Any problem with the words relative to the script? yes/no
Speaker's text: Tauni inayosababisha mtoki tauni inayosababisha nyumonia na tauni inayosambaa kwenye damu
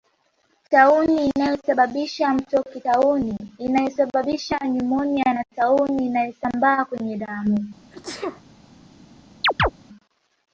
no